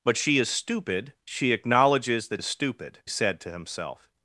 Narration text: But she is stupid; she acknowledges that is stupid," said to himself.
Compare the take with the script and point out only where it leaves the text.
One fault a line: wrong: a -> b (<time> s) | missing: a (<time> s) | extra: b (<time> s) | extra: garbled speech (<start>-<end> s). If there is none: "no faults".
no faults